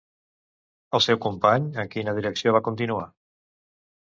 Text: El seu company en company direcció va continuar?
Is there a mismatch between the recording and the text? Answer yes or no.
yes